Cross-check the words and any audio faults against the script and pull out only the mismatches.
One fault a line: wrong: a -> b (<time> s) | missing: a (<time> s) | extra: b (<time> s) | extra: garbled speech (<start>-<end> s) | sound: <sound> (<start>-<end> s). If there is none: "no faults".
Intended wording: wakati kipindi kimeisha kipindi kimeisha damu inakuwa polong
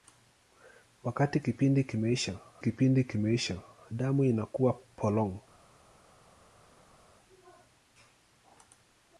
no faults